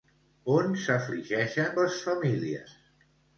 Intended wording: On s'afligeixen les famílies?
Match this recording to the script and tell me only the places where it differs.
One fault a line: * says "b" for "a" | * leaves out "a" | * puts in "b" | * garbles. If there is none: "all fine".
all fine